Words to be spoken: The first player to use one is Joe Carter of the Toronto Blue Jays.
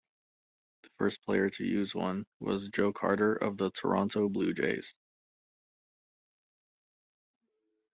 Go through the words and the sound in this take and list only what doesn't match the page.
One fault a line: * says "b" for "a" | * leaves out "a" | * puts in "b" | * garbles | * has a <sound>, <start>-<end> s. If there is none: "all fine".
* says "was" for "is"